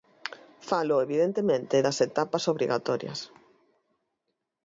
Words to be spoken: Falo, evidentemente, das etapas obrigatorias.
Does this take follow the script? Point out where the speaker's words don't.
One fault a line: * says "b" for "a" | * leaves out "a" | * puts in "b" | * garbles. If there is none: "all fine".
all fine